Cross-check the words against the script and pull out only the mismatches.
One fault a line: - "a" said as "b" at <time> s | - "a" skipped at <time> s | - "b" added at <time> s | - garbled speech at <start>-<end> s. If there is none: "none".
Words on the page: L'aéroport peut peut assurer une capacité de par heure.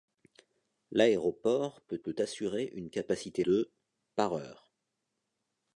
none